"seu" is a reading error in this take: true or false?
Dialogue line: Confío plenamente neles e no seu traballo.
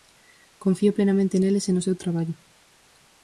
false